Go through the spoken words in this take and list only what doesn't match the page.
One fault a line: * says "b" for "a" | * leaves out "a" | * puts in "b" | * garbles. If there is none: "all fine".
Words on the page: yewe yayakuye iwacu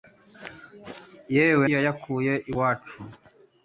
all fine